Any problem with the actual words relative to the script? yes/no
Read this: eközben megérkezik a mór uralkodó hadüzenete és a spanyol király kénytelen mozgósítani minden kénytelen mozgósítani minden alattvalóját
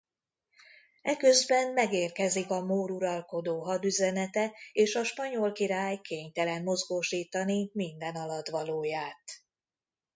yes